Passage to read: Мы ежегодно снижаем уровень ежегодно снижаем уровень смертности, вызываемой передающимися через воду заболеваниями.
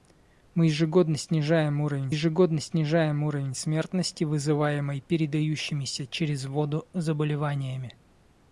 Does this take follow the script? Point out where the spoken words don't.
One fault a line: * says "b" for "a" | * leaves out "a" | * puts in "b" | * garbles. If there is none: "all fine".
all fine